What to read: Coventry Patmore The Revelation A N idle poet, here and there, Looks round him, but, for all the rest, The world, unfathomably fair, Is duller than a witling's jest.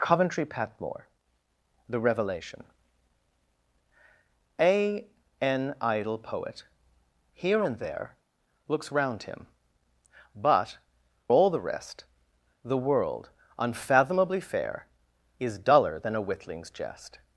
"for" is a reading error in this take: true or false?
true